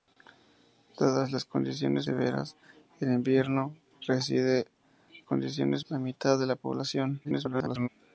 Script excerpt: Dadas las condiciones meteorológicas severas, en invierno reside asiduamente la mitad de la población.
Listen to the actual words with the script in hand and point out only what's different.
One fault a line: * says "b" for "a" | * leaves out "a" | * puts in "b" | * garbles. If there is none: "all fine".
* leaves out "meteorológicas"
* says "condiciones" for "asiduamente"
* garbles